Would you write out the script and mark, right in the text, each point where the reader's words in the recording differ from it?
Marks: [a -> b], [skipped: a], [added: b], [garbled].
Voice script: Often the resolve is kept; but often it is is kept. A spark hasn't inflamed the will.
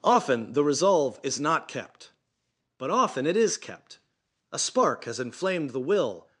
Often the resolve is [added: not] kept; but often it is [skipped: is] kept. A spark [hasn't -> has] inflamed the will.